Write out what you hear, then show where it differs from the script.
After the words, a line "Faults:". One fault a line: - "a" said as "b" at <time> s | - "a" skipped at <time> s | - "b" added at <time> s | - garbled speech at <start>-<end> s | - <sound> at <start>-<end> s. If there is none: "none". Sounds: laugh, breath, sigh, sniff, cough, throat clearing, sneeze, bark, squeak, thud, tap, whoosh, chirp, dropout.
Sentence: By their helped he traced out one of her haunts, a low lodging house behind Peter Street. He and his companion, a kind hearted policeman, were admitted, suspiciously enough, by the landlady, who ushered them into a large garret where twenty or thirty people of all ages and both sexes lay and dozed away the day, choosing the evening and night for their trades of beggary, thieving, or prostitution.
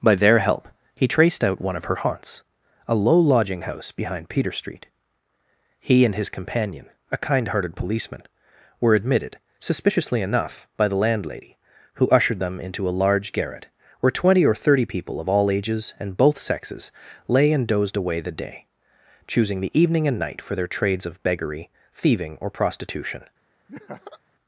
By their help he traced out one of her haunts, a low lodging house behind Peter Street. He and his companion, a kind hearted policeman, were admitted, suspiciously enough, by the landlady, who ushered them into a large garret where twenty or thirty people of all ages and both sexes lay and dozed away the day, choosing the evening and night for their trades of beggary, thieving, or prostitution.
Faults:
- "helped" said as "help" at 0.4 s
- laugh at 23.7-24.2 s